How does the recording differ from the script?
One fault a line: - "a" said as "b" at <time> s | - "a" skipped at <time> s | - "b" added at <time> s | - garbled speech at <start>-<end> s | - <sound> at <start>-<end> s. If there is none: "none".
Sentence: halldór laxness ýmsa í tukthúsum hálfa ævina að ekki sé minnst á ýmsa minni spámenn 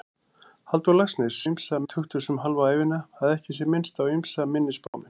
- dropout at 4.9-4.9 s